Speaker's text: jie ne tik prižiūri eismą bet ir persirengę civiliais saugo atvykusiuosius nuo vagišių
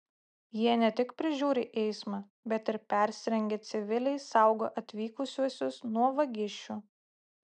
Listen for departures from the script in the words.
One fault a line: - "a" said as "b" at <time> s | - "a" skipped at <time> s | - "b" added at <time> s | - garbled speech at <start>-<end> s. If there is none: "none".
none